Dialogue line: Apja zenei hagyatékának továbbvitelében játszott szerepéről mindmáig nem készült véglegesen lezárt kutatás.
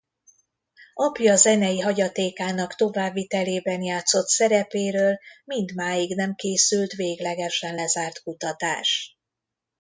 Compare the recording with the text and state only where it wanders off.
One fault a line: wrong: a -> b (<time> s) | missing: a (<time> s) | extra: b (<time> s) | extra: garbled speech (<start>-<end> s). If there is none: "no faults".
no faults